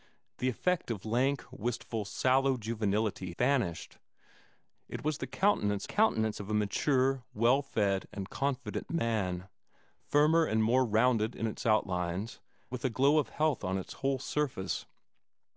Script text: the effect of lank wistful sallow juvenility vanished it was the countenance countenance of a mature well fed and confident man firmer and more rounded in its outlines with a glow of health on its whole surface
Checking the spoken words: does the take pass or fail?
pass